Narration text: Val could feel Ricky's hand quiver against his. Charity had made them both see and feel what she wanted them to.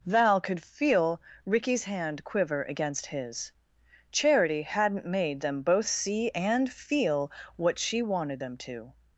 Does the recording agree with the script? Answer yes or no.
no